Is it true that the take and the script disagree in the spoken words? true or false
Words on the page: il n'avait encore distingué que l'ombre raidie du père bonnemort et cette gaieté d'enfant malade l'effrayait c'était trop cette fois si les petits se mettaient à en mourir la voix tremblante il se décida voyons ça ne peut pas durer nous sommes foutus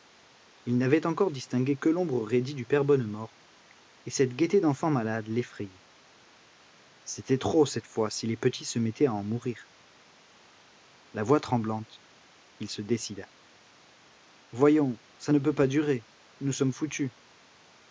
false